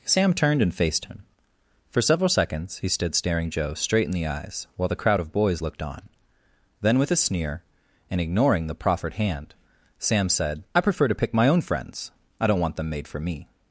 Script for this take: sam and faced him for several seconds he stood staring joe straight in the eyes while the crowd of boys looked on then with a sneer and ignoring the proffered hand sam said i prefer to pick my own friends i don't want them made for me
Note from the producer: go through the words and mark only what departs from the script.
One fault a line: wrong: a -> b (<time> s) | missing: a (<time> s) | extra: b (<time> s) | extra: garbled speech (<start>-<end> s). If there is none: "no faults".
extra: turned (0.3 s)